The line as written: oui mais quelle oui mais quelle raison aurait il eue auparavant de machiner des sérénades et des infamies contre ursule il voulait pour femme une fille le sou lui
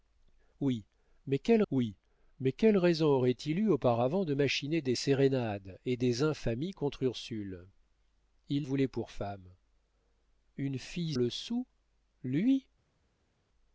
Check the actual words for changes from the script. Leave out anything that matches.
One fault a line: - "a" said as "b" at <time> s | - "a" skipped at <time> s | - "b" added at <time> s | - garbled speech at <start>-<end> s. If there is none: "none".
none